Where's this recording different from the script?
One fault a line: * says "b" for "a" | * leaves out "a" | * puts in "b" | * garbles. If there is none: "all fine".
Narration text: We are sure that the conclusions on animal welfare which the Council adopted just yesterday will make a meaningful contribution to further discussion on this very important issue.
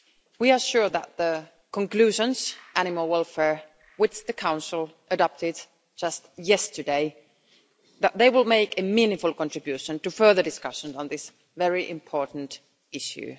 * leaves out "on"